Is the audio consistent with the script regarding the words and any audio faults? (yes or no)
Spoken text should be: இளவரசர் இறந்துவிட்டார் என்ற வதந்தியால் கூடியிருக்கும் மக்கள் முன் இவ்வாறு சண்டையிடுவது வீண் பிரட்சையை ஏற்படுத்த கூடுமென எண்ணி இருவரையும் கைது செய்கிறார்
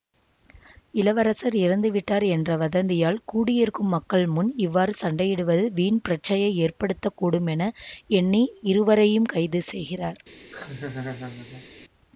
no